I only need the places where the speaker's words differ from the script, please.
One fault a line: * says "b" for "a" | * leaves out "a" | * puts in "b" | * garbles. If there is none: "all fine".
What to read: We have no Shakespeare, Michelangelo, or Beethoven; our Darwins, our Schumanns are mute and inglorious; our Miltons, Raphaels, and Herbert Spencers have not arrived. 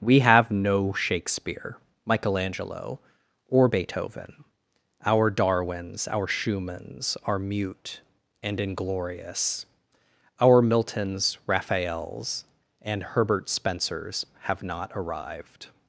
all fine